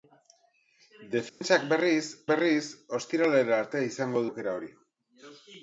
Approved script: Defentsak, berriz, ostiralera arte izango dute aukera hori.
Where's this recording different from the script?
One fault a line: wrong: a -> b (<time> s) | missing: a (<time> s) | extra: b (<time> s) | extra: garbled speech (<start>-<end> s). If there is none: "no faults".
extra: berriz (2.3 s)
missing: dute (4.2 s)